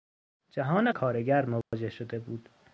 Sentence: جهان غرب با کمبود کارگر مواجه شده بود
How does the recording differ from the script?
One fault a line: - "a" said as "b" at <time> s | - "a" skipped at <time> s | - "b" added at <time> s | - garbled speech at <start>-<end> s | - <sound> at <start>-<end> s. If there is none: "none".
- "غرب با کمبود" skipped at 0.9 s
- dropout at 1.6-1.7 s